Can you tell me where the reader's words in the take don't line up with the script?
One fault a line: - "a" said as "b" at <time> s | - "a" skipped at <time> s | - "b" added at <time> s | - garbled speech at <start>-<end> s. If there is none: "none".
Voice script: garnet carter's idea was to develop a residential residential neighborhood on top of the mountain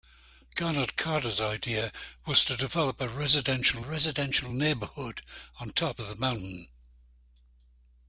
none